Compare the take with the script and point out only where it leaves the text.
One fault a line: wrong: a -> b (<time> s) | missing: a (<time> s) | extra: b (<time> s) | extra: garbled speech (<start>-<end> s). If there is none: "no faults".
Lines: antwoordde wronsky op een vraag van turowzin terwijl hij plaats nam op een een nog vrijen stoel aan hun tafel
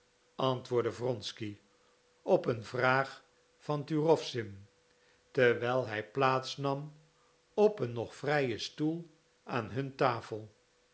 missing: een (7.9 s)